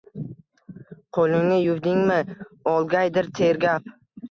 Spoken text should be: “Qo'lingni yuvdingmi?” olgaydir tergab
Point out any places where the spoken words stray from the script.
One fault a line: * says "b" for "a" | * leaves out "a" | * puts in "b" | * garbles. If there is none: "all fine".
all fine